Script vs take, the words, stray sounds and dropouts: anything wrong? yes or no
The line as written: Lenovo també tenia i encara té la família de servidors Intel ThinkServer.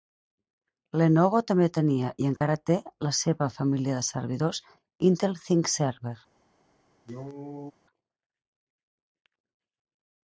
yes